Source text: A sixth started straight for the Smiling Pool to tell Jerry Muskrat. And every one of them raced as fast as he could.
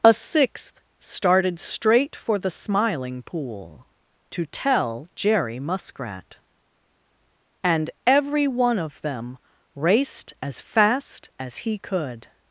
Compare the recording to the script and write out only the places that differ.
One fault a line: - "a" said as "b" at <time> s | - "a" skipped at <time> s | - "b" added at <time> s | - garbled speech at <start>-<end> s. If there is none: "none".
none